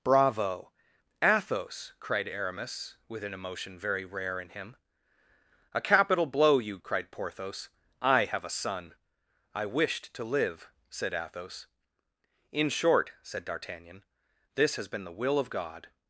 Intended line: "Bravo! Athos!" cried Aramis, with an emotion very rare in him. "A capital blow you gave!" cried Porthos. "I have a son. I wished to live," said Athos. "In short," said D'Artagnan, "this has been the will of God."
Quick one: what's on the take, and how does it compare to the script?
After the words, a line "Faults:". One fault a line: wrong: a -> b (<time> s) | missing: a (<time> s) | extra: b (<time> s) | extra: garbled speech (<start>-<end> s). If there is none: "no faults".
"Bravo! Athos!" cried Aramis, with an emotion very rare in him. "A capital blow you!" cried Porthos. "I have a son. I wished to live," said Athos. "In short," said D'Artagnan, "this has been the will of God."
Faults:
missing: gave (6.8 s)